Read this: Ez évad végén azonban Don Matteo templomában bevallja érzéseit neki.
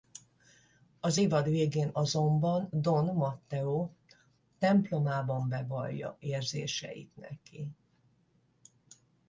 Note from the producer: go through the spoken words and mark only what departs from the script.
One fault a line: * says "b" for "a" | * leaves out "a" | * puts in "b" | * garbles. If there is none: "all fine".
* says "Az" for "Ez"